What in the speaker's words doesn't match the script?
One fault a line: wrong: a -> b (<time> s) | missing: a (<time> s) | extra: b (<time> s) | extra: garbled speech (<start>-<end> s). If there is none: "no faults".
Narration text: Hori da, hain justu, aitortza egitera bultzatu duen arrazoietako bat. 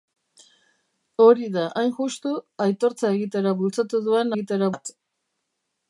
wrong: arrazoietako -> egitera (4.3 s)